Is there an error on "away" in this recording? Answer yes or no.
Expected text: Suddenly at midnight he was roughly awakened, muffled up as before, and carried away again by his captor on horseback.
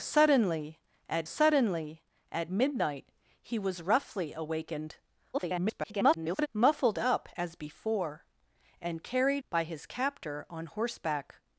yes